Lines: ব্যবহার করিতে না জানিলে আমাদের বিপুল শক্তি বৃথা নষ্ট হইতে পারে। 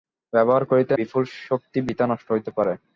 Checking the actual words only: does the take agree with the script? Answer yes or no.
no